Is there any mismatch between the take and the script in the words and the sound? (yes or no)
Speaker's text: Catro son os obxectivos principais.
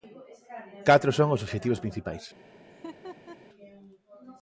yes